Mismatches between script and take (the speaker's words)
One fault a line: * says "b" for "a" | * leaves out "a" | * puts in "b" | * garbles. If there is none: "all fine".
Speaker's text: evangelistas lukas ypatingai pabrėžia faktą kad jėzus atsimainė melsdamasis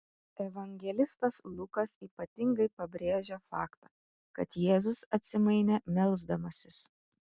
all fine